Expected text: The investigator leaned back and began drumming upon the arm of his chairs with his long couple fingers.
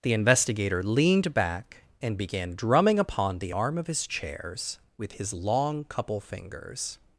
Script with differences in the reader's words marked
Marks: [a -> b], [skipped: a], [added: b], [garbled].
The investigator leaned back and began drumming upon the arm of his chairs with his long couple fingers.